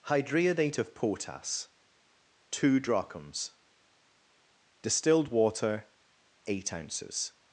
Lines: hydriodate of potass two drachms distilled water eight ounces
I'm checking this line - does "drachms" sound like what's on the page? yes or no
yes